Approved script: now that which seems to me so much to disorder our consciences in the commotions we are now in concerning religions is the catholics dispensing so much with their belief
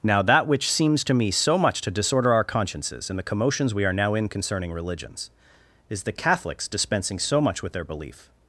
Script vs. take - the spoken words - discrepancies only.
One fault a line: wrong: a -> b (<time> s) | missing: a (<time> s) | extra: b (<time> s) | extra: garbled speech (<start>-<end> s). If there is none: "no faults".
no faults